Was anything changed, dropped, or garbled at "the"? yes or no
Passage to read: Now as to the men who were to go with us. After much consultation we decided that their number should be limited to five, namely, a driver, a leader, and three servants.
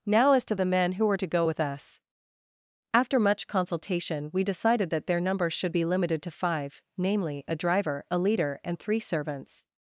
no